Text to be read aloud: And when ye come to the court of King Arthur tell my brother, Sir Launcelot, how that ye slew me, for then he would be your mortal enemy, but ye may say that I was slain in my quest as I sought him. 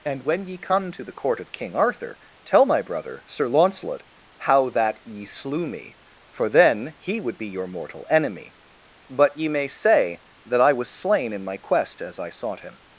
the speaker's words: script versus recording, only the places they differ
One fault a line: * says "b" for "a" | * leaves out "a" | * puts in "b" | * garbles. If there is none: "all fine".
all fine